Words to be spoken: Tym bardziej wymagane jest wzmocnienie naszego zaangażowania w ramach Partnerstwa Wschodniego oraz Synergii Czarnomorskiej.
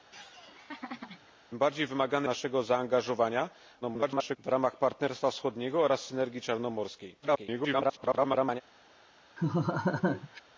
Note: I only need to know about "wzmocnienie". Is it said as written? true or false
false